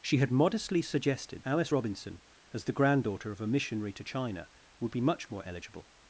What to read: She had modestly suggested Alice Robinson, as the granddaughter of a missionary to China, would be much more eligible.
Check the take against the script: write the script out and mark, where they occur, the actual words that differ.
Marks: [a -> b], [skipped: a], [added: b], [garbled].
She had modestly suggested Alice Robinson, as the granddaughter of a missionary to China, would be much more eligible.